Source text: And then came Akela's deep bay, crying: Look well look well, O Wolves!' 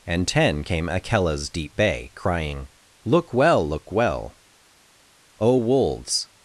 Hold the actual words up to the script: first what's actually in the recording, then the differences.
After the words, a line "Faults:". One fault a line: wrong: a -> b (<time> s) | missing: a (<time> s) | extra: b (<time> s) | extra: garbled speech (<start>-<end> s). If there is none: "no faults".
And ten came Akela's deep bay, crying: Look well look well, O Wolves!'
Faults:
wrong: then -> ten (0.3 s)